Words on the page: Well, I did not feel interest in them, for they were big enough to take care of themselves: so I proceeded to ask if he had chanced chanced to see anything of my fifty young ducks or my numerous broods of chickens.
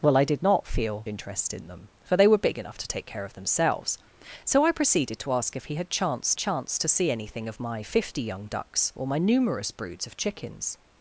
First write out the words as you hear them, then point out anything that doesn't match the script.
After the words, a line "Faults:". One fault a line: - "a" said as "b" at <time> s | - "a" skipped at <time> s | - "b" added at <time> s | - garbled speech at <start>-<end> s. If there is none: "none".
Well, I did not feel interest in them, for they were big enough to take care of themselves: so I proceeded to ask if he had chanced chanced to see anything of my fifty young ducks or my numerous broods of chickens.
Faults:
none